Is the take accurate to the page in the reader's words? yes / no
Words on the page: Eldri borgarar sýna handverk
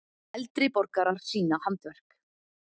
yes